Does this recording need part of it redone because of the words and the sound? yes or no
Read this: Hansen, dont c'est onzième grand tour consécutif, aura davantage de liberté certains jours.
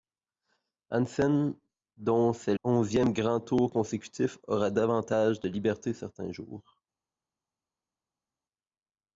no